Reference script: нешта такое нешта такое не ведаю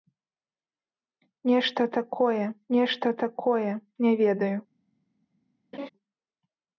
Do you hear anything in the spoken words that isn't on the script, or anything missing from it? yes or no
no